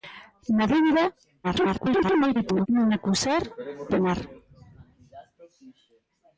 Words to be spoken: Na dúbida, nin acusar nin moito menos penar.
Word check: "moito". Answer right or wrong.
wrong